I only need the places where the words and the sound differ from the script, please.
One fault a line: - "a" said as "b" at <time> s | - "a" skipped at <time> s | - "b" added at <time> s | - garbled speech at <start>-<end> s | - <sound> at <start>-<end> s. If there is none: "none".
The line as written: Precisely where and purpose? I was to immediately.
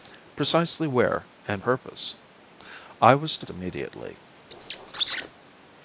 - squeak at 4.5-5.3 s